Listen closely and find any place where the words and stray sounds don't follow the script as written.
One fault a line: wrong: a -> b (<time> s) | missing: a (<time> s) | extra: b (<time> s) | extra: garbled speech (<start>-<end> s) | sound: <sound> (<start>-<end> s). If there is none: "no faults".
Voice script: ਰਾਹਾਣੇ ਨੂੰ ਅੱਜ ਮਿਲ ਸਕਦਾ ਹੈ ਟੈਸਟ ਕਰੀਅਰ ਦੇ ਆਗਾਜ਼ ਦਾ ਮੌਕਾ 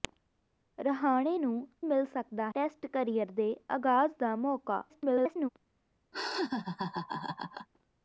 missing: ਅੱਜ (1.7 s)
missing: ਹੈ (2.5 s)
extra: garbled speech (4.9-5.5 s)
sound: laugh (6.1-7.7 s)